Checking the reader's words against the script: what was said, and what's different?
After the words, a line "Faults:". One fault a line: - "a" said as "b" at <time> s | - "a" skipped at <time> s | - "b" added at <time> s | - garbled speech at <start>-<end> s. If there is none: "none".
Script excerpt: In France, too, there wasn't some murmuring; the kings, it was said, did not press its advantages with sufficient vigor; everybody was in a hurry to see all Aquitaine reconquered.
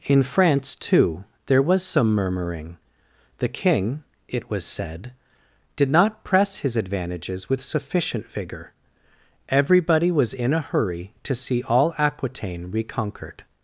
In France, too, there was some murmuring; the king, it was said, did not press his advantages with sufficient vigor; everybody was in a hurry to see all Aquitaine reconquered.
Faults:
- "wasn't" said as "was" at 1.6 s
- "kings" said as "king" at 3.5 s
- "its" said as "his" at 6.6 s